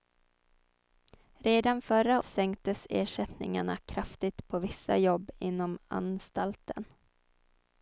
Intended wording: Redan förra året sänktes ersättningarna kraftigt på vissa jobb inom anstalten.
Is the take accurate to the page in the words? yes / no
no